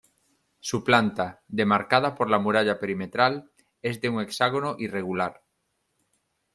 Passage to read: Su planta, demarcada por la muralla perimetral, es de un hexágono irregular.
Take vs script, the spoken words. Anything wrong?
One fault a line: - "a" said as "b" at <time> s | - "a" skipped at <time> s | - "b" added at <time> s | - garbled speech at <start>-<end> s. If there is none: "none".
none